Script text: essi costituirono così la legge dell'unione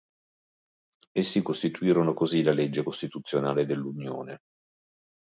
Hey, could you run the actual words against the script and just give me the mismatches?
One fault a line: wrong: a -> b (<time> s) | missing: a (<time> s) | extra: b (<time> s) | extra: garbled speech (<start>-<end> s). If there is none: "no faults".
extra: costituzionale (2.8 s)